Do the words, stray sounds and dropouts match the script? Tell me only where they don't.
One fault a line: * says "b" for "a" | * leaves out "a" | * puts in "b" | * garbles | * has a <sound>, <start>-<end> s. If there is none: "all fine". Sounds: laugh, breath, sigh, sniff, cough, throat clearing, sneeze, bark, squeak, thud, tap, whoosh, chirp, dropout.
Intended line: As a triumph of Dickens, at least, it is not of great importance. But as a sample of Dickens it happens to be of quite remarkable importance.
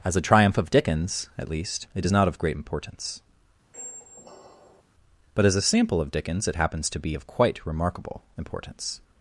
* has a squeak, 3.7-4.8 s